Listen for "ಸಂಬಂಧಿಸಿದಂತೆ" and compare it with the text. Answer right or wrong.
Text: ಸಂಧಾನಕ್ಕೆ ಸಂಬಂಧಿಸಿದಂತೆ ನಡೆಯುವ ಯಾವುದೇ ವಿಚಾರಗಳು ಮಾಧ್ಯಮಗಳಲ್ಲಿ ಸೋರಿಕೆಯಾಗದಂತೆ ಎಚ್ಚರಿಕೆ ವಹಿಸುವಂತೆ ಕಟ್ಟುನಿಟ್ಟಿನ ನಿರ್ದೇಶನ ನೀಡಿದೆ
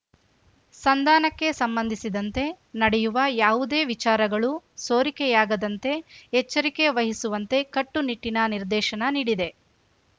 right